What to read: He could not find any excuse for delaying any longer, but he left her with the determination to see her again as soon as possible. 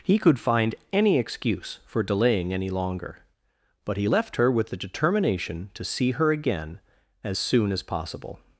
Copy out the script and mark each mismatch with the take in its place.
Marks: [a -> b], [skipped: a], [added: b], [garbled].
He could [skipped: not] find any excuse for delaying any longer, but he left her with the determination to see her again as soon as possible.